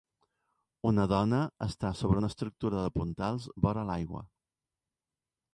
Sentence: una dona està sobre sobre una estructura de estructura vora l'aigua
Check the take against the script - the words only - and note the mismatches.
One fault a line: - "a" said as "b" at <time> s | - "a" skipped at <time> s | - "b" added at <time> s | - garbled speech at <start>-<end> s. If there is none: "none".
- "sobre" skipped at 2.2 s
- "estructura" said as "puntals" at 3.0 s